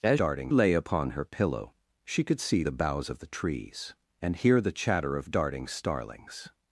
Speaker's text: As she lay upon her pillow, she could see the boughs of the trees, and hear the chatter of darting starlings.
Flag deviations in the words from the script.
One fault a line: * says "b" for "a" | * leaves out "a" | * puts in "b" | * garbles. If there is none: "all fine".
* says "darting" for "she"